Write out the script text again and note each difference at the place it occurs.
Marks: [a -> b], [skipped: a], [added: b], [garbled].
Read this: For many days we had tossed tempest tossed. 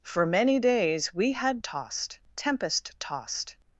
For many days we had tossed tempest tossed.